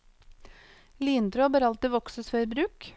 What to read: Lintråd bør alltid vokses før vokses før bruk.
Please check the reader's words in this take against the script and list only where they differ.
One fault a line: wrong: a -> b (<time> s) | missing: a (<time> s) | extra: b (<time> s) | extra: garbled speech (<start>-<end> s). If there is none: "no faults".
missing: vokses før (2.5 s)